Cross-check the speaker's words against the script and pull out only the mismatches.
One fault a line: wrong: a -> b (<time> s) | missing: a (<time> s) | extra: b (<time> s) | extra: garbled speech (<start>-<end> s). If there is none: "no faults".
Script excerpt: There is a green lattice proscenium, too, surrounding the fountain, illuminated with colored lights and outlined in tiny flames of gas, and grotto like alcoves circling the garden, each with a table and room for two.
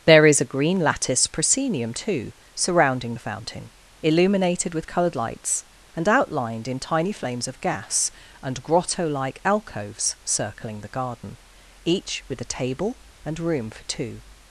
no faults